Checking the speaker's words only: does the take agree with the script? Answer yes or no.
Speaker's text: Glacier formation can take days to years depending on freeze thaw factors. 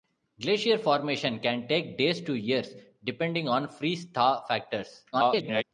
no